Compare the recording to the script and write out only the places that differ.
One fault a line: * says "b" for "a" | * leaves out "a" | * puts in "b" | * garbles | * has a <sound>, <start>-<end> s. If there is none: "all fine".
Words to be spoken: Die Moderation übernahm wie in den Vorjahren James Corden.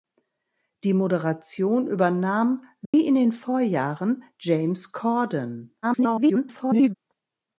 * has a dropout, 2.9-2.9 s
* garbles